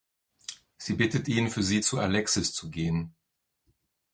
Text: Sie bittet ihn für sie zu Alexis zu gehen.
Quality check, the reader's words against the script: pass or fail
pass